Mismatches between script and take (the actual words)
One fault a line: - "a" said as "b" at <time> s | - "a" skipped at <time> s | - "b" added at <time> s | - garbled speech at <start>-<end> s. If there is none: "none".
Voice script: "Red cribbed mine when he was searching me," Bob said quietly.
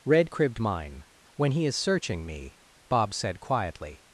- "was" said as "is" at 1.7 s